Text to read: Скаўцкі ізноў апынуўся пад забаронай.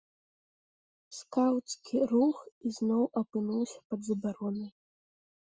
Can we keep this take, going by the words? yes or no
no